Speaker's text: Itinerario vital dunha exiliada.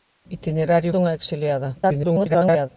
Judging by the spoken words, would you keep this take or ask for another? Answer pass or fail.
fail